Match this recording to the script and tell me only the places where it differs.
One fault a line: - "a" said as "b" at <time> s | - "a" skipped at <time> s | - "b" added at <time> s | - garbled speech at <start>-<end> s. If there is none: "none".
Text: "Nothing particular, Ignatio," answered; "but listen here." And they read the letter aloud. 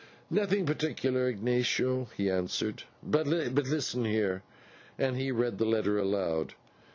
- "he" added at 2.2 s
- "they" said as "he" at 5.2 s